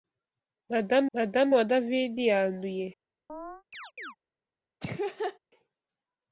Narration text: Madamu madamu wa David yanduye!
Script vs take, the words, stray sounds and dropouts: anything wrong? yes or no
yes